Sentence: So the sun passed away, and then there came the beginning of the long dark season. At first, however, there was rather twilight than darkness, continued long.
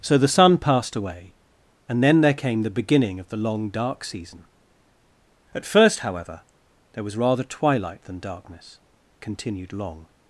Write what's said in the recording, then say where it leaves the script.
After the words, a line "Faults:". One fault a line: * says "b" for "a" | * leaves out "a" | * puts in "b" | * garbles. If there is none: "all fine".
So the sun passed away, and then there came the beginning of the long dark season. At first, however, there was rather twilight than darkness, continued long.
Faults:
all fine